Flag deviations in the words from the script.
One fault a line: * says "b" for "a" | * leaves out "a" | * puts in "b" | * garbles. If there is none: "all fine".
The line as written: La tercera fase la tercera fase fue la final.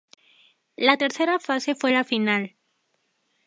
* leaves out "la tercera fase"